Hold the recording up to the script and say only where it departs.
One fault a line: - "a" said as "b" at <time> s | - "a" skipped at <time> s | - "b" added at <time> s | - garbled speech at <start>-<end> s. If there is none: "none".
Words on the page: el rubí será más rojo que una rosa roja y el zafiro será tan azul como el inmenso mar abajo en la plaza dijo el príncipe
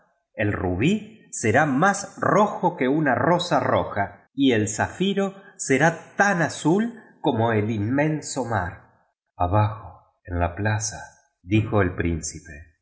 none